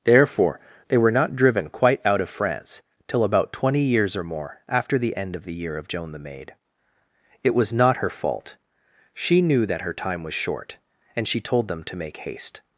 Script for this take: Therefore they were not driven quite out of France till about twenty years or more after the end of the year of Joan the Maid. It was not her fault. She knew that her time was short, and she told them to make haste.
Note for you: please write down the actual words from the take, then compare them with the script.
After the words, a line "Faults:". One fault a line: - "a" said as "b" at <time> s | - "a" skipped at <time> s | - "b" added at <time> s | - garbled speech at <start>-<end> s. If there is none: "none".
Therefore they were not driven quite out of France till about twenty years or more after the end of the year of Joan the Maid. It was not her fault. She knew that her time was short, and she told them to make haste.
Faults:
none